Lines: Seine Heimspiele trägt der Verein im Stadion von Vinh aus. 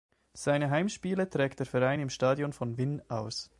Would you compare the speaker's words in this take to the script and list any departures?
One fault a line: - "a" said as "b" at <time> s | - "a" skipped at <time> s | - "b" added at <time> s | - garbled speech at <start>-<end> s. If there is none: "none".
none